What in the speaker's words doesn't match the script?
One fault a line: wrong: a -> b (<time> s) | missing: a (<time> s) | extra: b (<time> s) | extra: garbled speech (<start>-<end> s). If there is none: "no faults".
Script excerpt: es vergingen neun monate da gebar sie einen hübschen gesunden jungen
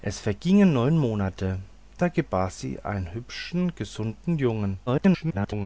extra: garbled speech (4.9-5.7 s)